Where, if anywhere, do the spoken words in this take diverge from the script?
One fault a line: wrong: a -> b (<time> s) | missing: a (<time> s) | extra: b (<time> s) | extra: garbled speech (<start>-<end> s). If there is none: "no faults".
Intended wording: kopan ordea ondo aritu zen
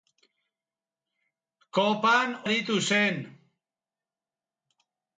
missing: ordea ondo (2.3 s)